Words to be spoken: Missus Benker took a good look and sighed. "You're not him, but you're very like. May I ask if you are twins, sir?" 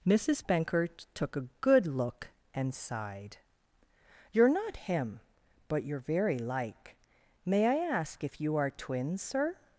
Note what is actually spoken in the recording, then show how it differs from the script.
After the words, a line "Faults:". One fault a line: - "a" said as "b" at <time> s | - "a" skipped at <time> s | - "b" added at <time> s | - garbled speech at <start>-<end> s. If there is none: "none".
Missus Benker took a good look and sighed. "You're not him, but you're very like. May I ask if you are twins, sir?"
Faults:
none